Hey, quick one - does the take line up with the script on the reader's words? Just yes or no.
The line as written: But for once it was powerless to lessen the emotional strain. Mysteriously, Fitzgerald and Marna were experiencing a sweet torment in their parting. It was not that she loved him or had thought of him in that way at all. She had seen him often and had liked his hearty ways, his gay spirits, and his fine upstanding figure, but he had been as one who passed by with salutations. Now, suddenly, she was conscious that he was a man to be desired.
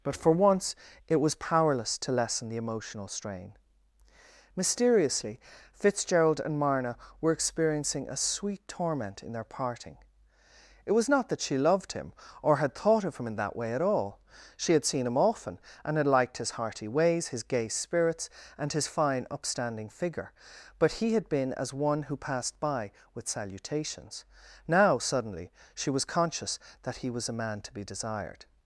yes